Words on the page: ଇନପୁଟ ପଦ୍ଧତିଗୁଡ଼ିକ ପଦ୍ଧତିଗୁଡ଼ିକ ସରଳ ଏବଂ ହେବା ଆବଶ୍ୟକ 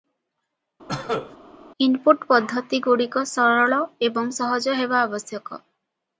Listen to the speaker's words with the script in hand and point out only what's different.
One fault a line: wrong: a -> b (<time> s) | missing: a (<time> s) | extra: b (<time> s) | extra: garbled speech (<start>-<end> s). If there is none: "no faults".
missing: ପଦ୍ଧତିଗୁଡ଼ିକ (3.2 s)
extra: ସହଜ (4.4 s)